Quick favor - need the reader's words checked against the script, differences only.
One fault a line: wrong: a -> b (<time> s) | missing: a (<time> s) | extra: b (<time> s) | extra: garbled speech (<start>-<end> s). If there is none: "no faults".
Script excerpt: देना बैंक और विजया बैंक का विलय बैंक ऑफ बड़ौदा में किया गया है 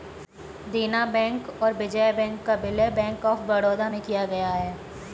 no faults